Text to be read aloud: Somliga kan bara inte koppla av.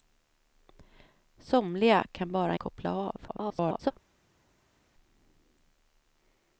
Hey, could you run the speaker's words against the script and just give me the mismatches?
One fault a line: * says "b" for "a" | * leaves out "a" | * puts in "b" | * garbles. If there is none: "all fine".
* leaves out "inte"
* garbles